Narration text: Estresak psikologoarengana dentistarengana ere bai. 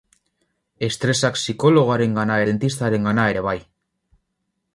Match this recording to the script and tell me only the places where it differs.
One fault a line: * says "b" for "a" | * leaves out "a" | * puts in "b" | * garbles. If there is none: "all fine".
all fine